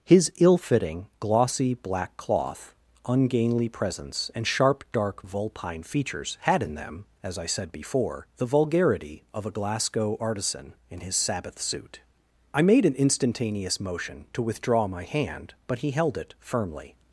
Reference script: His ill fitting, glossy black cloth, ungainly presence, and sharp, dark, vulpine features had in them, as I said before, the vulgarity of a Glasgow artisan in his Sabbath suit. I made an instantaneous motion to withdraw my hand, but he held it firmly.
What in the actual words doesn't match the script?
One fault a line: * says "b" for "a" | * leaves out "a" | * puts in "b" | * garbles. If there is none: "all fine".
all fine